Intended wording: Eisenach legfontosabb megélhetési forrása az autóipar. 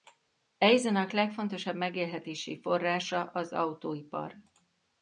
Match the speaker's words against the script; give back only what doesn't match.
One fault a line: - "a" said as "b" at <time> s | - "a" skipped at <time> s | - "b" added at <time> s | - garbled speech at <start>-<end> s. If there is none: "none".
none